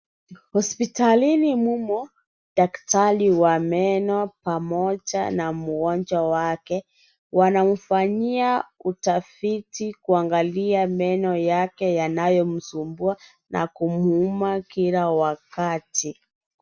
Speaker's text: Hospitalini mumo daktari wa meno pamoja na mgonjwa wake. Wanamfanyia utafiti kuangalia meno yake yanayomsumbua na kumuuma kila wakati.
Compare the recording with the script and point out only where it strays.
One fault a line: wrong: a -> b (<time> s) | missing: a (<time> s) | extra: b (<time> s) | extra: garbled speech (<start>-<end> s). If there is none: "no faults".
no faults